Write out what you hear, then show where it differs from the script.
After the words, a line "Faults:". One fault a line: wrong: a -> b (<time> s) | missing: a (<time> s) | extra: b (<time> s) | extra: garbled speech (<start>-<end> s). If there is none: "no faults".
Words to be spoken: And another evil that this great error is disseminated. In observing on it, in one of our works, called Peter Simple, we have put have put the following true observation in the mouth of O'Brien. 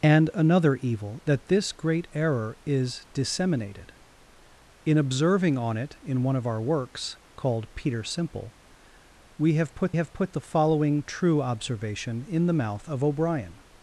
And another evil that this great error is disseminated. In observing on it, in one of our works, called Peter Simple, we have put have put the following true observation in the mouth of O'Brien.
Faults:
no faults